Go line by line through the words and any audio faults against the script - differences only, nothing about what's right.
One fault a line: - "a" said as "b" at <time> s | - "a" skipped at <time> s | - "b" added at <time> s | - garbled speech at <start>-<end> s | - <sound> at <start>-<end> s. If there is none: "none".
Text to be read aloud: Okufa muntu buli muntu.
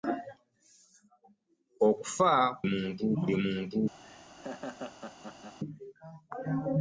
- laugh at 4.0-5.6 s